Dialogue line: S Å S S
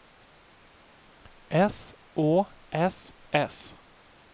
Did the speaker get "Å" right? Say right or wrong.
right